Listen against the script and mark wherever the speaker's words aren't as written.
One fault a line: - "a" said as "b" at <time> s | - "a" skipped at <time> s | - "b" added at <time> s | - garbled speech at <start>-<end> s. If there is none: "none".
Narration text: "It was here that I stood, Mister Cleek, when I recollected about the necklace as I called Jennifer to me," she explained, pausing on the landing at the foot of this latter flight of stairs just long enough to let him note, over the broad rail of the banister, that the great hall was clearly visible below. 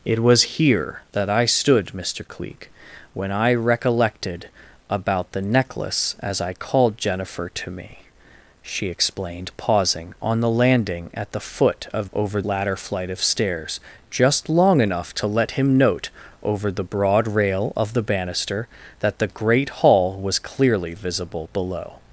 - "this" said as "over" at 12.1 s